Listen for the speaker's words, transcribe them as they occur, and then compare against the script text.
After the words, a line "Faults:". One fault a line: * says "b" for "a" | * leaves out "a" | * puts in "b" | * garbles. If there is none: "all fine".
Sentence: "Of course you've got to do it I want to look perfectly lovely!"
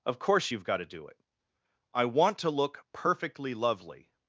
"Of course you've got to do it I want to look perfectly lovely!"
Faults:
all fine